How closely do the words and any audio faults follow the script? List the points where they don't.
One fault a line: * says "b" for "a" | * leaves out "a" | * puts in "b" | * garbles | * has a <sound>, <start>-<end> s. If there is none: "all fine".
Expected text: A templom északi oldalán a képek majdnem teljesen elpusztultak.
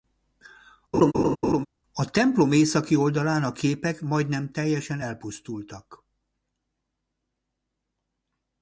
* has a laugh, 0.9-1.7 s